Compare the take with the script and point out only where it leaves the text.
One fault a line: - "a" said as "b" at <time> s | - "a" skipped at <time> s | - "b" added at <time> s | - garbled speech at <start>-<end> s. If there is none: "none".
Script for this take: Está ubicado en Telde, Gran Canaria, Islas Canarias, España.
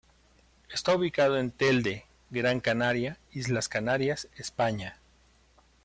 none